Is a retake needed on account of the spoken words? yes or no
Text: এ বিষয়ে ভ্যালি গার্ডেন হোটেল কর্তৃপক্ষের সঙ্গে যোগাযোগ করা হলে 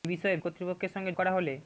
yes